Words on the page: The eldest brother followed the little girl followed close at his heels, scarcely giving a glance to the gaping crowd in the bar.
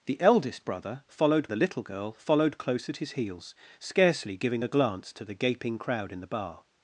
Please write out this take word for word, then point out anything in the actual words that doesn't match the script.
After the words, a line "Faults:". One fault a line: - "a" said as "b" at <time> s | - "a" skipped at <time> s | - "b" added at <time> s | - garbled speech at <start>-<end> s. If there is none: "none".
The eldest brother followed the little girl followed close at his heels, scarcely giving a glance to the gaping crowd in the bar.
Faults:
none